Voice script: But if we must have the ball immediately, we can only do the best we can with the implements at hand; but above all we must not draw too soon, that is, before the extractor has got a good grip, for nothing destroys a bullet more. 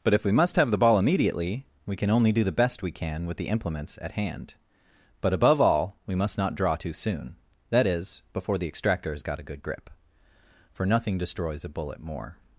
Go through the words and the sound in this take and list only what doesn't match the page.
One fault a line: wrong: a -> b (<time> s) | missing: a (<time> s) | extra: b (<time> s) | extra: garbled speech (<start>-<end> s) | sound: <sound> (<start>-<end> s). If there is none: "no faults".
no faults